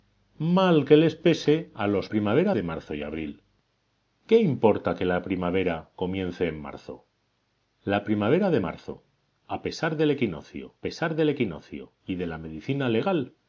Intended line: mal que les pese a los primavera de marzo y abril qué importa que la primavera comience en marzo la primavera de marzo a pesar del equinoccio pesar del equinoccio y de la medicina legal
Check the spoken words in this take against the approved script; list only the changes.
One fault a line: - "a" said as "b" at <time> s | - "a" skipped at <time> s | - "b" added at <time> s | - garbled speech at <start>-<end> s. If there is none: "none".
none